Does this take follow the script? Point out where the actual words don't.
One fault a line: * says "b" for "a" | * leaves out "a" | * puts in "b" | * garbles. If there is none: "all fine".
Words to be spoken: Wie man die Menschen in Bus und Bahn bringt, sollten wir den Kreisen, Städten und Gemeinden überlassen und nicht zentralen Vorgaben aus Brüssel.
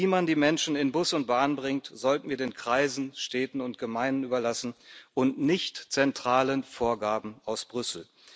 all fine